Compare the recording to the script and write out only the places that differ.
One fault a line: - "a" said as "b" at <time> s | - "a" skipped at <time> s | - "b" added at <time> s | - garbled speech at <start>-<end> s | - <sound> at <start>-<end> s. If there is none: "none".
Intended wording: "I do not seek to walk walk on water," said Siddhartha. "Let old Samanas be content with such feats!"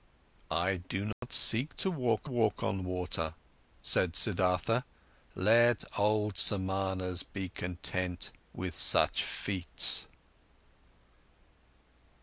- dropout at 1.1-1.2 s